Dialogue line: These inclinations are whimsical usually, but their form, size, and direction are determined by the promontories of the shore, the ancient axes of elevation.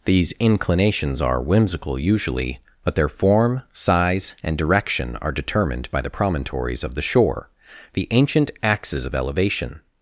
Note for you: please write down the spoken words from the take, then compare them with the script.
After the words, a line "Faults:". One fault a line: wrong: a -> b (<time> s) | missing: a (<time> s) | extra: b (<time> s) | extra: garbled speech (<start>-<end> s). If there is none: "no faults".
These inclinations are whimsical usually, but their form, size, and direction are determined by the promontories of the shore, the ancient axes of elevation.
Faults:
no faults